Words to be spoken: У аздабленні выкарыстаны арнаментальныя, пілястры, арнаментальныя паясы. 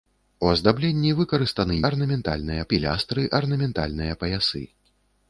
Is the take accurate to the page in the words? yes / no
yes